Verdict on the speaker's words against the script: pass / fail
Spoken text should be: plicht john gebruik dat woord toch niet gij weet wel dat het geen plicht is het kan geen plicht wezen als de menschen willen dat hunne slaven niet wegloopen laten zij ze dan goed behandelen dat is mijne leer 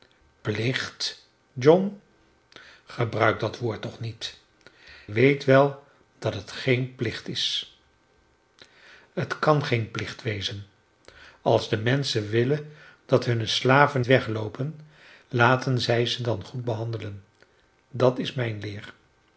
fail